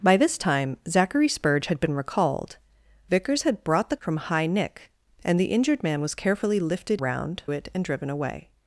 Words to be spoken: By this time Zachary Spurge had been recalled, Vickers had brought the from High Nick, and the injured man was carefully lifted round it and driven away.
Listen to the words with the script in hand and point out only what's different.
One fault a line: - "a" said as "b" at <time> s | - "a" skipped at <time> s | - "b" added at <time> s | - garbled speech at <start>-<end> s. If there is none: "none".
none